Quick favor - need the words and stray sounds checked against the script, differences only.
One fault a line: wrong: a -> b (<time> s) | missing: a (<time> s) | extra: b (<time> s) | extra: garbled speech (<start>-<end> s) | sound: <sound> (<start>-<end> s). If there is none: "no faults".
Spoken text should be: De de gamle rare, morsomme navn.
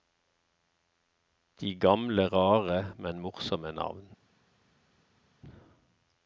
missing: de (1.8 s)
extra: men (3.0 s)